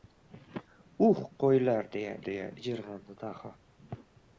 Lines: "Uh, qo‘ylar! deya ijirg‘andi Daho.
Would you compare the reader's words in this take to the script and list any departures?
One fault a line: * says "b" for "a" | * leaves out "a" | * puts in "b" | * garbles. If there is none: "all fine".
* puts in "deya"